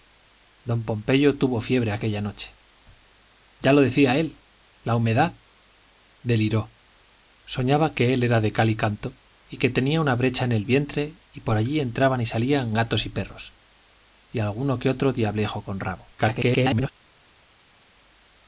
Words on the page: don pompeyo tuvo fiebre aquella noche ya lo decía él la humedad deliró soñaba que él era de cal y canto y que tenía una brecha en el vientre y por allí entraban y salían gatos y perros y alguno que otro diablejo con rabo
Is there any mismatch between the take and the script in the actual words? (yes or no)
yes